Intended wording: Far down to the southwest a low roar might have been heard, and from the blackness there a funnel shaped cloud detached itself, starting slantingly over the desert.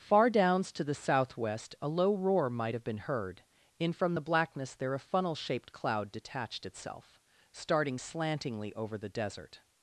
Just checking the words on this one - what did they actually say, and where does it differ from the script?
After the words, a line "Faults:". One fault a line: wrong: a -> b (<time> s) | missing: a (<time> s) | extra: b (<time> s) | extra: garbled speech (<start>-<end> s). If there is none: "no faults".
Far downs to the southwest a low roar might have been heard, in from the blackness there a funnel shaped cloud detached itself, starting slantingly over the desert.
Faults:
wrong: down -> downs (0.3 s)
wrong: and -> in (3.8 s)